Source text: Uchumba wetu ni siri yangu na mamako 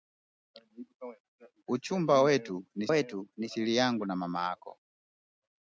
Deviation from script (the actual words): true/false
true